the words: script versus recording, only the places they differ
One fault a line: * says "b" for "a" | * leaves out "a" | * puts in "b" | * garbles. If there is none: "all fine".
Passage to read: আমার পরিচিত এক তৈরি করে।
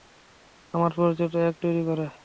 all fine